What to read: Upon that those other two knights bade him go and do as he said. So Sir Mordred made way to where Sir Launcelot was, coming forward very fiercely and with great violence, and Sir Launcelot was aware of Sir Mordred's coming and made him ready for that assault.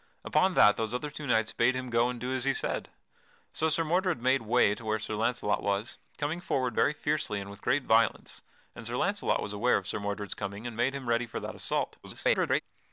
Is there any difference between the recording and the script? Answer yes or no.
yes